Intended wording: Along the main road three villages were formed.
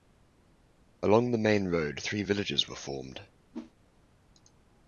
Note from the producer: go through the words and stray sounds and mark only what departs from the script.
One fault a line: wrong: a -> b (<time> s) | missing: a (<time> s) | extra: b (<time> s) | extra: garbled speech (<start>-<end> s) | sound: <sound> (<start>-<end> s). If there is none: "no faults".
sound: whoosh (3.5-3.7 s)